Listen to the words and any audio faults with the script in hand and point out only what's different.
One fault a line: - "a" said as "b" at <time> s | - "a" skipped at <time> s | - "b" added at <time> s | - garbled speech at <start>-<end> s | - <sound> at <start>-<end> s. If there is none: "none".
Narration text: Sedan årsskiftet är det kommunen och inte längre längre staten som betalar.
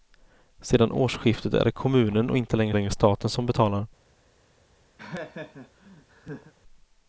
- laugh at 5.0-6.5 s